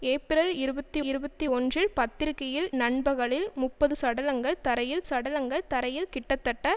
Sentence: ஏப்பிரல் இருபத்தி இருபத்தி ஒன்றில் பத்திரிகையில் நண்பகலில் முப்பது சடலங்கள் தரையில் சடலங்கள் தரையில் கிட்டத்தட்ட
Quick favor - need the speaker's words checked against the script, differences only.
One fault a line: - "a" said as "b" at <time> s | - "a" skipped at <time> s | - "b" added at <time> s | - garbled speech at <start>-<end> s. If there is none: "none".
none